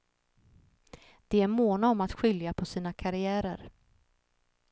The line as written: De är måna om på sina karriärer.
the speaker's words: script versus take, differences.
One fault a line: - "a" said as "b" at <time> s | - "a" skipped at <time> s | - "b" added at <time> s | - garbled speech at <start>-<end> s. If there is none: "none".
- "att skilja" added at 2.0 s